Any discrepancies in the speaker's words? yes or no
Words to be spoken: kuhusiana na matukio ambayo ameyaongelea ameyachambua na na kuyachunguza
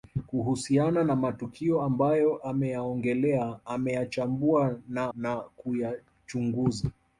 no